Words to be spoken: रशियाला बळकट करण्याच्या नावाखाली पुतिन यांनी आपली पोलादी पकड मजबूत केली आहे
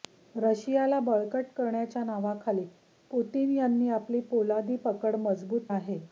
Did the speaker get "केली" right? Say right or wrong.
wrong